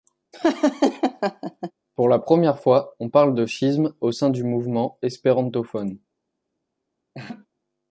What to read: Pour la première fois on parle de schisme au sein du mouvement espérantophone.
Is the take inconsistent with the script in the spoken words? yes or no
no